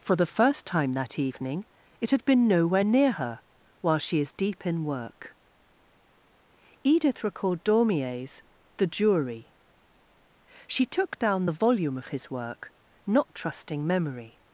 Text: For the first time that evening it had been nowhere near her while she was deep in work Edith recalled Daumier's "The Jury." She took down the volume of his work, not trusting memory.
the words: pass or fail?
fail